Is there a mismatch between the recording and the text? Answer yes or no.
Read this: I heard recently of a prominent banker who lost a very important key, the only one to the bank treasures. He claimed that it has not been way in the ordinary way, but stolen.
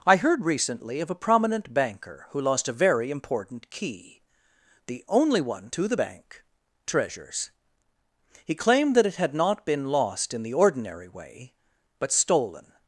yes